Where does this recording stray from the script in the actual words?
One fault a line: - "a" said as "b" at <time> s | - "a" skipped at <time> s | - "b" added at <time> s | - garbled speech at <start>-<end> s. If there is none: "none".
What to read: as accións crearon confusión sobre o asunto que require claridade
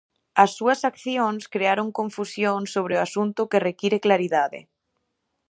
- "súas" added at 0.6 s